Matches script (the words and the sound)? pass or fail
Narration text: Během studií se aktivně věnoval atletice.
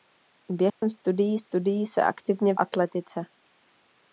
fail